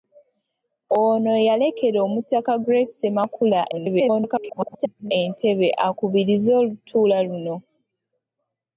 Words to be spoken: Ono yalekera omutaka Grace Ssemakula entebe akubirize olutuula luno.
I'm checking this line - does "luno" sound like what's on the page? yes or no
yes